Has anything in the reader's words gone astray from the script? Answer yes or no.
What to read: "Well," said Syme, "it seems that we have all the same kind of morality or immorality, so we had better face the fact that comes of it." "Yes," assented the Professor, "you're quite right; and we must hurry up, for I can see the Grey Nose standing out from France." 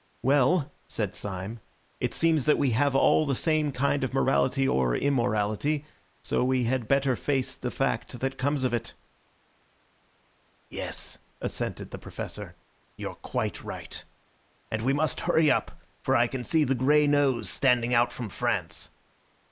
no